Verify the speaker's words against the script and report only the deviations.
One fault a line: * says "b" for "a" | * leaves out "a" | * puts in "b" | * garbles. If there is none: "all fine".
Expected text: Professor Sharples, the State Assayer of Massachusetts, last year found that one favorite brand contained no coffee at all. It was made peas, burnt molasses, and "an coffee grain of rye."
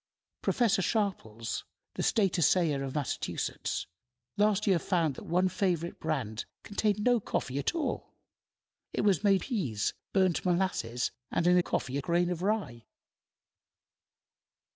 all fine